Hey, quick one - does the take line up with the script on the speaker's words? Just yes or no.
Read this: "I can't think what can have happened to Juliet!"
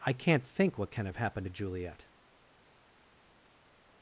yes